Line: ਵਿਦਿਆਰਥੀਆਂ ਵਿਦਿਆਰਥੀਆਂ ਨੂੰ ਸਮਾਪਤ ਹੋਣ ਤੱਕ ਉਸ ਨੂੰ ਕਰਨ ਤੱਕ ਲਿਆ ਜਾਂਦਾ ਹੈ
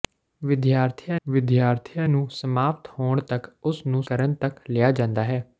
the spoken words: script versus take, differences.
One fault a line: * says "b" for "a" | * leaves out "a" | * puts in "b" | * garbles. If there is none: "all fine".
all fine